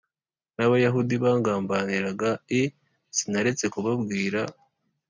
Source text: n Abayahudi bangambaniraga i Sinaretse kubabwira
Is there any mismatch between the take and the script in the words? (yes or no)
no